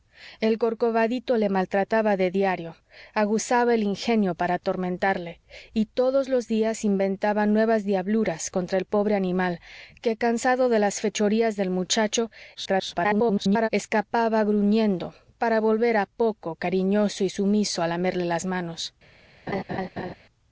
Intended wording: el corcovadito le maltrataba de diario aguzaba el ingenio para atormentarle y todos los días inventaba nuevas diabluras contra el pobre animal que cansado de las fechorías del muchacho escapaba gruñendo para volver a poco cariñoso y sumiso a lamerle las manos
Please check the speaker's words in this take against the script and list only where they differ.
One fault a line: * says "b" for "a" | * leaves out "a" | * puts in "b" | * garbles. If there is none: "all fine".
* garbles